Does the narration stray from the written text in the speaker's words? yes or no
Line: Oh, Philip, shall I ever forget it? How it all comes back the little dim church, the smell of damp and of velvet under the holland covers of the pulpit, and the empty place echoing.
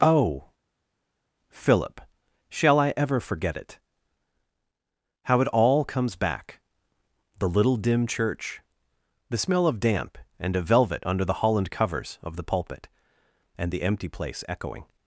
no